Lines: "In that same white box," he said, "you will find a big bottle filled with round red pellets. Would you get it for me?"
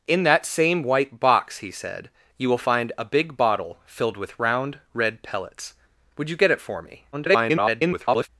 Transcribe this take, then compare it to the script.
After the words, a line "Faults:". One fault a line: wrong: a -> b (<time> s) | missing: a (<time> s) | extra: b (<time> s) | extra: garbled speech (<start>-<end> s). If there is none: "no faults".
"In that same white box," he said, "you will find a big bottle filled with round red pellets. Would you get it for me?" [garbled]
Faults:
extra: garbled speech (7.1-8.3 s)